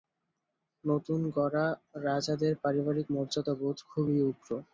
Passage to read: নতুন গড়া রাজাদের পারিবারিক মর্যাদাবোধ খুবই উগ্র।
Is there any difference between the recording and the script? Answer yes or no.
no